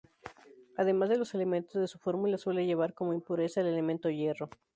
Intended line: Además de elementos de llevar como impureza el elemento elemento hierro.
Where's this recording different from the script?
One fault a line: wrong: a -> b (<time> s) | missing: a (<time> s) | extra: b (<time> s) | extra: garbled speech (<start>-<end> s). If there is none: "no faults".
extra: los (1.2 s)
extra: su fórmula suele (1.8 s)
missing: elemento (4.1 s)